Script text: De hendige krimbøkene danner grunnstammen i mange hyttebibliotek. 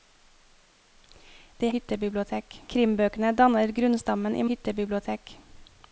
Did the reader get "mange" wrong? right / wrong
wrong